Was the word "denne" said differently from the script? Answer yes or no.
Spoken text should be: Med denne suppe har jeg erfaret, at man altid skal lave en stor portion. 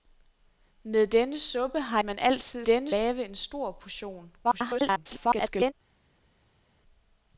no